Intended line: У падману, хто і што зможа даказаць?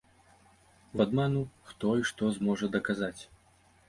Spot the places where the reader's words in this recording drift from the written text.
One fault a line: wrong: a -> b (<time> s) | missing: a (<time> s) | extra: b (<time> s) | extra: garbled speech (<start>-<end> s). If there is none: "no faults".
no faults